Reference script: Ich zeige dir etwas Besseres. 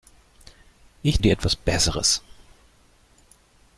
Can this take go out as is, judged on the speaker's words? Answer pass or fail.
fail